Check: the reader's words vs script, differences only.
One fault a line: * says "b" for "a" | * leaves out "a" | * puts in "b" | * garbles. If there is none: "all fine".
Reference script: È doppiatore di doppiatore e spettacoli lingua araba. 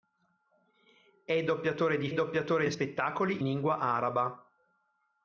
all fine